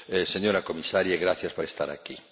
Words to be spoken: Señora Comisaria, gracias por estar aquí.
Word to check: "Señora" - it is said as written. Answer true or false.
true